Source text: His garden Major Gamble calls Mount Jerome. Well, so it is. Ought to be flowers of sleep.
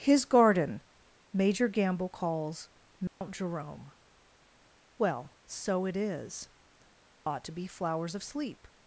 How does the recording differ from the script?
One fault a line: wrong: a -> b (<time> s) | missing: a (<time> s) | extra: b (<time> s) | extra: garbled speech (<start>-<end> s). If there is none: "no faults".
no faults